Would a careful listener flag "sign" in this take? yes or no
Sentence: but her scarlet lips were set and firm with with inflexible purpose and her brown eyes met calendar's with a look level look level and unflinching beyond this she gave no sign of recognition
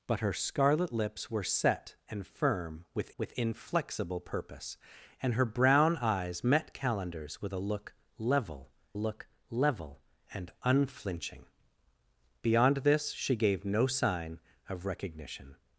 no